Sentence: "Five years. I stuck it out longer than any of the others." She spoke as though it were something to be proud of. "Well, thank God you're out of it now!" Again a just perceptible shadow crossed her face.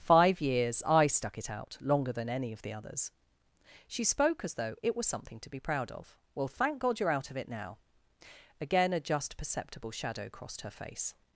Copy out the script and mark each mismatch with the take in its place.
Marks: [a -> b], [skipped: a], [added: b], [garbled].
"Five years. I stuck it out longer than any of the others." She spoke as though it [were -> was] something to be proud of. "Well, thank God you're out of it now!" Again a just perceptible shadow crossed her face.